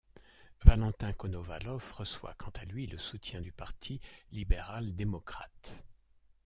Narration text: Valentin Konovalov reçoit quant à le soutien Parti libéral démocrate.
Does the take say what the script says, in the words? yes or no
no